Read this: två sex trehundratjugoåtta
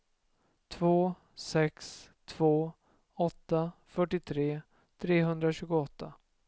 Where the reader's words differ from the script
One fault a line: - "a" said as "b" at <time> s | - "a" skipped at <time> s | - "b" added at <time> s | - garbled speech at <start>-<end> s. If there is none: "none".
- "två åtta fyrtiotre" added at 2.2 s